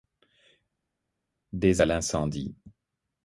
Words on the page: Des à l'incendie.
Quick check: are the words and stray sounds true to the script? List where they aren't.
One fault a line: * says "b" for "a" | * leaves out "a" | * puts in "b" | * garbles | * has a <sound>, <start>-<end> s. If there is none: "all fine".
all fine